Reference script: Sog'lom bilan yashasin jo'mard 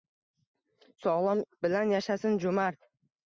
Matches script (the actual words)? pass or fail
pass